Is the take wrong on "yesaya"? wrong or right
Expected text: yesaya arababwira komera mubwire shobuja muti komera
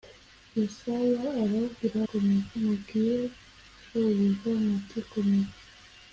right